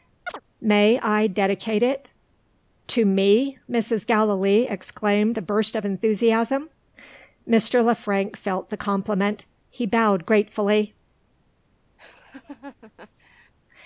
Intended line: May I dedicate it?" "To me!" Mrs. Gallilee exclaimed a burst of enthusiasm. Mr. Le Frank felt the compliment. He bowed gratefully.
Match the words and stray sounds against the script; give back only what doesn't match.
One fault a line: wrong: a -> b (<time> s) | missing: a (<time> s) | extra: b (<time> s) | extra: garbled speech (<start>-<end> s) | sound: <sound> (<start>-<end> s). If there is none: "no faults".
sound: chirp (0.3-0.4 s)
sound: laugh (12.0-13.5 s)